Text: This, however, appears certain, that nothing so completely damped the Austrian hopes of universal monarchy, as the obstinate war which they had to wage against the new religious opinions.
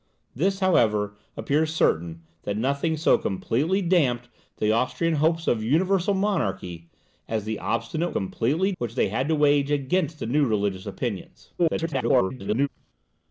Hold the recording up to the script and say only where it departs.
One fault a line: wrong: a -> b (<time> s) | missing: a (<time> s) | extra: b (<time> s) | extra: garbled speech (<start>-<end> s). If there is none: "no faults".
wrong: war -> completely (8.1 s)
extra: garbled speech (11.6-12.7 s)